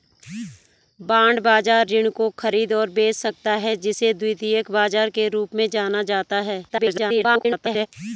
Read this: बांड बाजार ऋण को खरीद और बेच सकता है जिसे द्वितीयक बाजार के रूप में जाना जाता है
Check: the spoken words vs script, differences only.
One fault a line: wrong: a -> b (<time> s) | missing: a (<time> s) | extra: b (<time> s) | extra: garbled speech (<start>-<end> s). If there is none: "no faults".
extra: garbled speech (6.7-7.9 s)